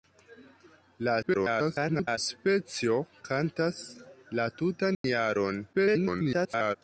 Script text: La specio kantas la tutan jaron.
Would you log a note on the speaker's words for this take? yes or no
yes